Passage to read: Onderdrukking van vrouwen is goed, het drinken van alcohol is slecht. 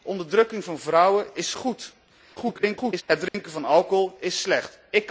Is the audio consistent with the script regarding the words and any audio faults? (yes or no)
no